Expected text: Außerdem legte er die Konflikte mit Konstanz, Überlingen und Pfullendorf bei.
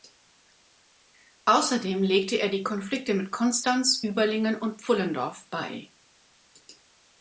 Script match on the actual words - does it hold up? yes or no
yes